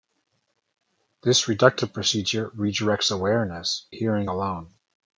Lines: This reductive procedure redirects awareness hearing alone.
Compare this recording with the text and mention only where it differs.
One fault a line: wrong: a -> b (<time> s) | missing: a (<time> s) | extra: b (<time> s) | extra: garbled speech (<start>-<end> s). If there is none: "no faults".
no faults